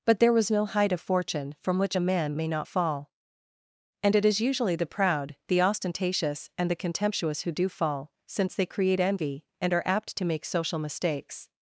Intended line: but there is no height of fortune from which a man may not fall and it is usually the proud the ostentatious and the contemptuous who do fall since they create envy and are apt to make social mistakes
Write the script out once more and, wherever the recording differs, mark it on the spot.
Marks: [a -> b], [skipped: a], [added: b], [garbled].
but there [is -> was] no height of fortune from which a man may not fall and it is usually the proud the ostentatious and the contemptuous who do fall since they create envy and are apt to make social mistakes